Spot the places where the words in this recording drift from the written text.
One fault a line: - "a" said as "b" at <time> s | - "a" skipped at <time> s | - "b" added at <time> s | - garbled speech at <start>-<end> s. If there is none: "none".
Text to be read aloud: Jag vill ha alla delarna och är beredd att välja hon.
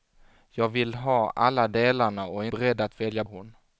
none